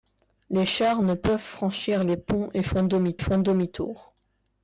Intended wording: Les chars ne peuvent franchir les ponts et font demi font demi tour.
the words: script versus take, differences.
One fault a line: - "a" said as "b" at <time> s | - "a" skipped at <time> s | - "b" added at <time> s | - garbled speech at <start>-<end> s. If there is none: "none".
none